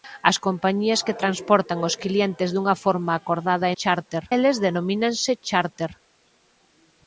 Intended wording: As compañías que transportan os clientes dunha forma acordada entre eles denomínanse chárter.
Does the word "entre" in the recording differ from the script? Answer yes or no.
yes